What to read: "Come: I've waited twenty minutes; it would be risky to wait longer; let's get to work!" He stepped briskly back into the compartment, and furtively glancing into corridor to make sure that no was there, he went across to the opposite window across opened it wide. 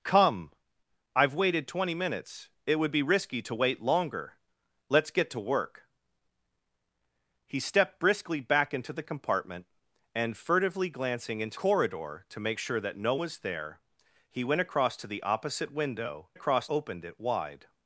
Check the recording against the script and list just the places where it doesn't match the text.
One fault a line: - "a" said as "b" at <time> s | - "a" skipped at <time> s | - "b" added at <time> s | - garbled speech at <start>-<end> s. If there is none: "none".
none